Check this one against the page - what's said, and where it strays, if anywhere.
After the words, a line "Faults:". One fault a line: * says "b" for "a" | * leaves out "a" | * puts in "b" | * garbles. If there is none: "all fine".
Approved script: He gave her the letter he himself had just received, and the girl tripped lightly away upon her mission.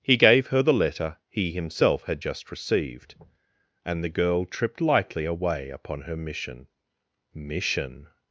He gave her the letter he himself had just received, and the girl tripped lightly away upon her mission mission.
Faults:
* puts in "mission"